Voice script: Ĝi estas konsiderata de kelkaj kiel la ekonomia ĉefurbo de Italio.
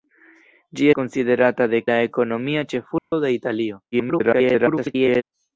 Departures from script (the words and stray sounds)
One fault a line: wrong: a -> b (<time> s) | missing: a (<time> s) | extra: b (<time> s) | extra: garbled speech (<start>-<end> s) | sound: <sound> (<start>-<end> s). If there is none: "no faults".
missing: estas (0.9 s)
missing: kelkaj kiel (1.8 s)
sound: dropout (3.0-3.1 s)
extra: garbled speech (3.9-5.2 s)